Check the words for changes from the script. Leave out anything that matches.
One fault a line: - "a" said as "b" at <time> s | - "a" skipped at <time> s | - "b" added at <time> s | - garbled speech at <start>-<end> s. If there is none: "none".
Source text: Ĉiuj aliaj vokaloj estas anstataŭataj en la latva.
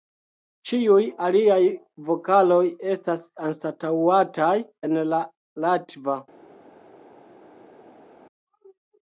none